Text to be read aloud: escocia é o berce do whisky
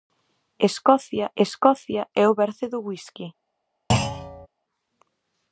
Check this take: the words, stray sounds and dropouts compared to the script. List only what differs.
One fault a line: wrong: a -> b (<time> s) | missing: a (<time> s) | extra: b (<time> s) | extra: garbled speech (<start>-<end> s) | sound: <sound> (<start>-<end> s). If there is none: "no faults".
extra: escocia (1.4 s)
sound: thud (3.9-4.5 s)